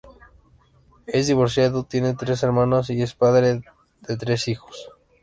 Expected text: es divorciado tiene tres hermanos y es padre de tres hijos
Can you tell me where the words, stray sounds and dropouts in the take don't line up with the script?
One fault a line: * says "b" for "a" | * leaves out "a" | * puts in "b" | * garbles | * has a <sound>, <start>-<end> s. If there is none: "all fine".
all fine